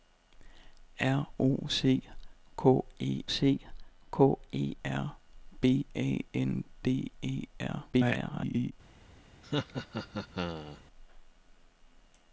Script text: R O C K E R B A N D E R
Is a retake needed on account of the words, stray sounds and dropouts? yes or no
yes